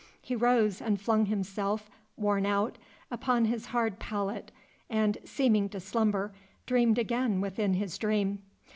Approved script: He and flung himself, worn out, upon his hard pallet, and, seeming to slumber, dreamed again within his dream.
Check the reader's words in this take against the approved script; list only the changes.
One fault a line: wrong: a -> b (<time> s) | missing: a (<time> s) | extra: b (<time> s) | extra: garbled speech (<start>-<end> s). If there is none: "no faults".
extra: rose (0.3 s)